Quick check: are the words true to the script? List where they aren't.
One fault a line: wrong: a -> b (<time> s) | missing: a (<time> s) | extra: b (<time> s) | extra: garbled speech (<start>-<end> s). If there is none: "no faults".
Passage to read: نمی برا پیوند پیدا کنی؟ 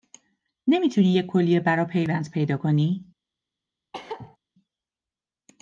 extra: تونی یه کلیه (0.9 s)